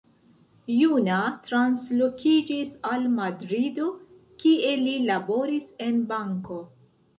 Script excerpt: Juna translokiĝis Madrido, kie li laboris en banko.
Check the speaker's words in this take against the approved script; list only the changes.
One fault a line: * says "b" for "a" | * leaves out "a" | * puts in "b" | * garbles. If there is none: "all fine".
* puts in "al"